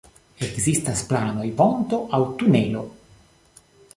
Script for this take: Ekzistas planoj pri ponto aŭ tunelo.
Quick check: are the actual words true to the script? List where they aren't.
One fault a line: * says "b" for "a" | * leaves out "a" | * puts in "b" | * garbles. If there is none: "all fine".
* leaves out "pri"